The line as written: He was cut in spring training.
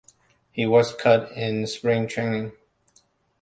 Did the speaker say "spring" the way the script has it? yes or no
yes